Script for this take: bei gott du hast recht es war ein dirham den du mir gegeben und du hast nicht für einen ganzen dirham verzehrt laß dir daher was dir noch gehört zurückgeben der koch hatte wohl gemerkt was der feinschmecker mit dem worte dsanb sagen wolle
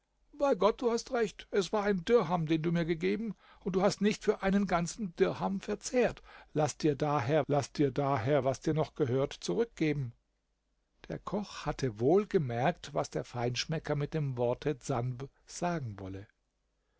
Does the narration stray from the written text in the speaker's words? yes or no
yes